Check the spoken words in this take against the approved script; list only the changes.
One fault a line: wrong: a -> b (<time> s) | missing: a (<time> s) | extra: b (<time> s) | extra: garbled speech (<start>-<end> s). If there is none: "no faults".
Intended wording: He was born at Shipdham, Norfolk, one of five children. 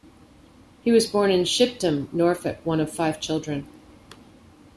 wrong: at -> in (1.3 s)